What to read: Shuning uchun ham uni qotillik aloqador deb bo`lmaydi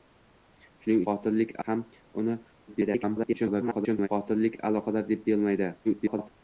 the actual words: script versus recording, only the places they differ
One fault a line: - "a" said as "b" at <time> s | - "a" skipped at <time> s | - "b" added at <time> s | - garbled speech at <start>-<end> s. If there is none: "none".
- "uchun" said as "qotillik" at 1.1 s
- garbled speech at 2.7-4.1 s
- garbled speech at 5.8-6.3 s